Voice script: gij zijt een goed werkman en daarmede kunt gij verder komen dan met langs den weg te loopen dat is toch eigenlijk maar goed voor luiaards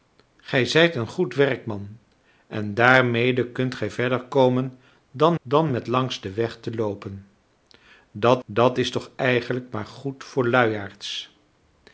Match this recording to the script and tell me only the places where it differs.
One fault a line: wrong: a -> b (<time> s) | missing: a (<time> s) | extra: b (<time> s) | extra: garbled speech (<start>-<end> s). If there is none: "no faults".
extra: dan (5.4 s)
extra: dat (8.4 s)